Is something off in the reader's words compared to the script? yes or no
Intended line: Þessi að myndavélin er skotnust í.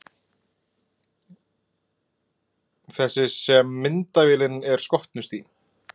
yes